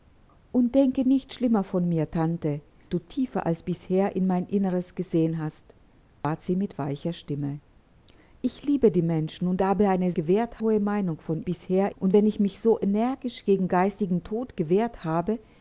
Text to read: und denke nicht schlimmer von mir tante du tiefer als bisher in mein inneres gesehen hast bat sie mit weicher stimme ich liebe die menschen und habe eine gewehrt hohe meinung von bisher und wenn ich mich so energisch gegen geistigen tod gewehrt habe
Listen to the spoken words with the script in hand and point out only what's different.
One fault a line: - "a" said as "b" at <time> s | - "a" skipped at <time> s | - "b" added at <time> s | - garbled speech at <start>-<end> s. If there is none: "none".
none